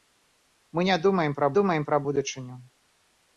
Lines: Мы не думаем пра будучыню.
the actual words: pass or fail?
fail